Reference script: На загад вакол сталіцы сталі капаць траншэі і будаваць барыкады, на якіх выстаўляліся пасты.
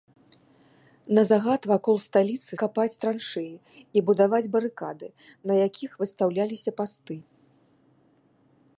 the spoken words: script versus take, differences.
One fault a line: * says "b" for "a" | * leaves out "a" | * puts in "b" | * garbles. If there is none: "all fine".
* leaves out "сталі"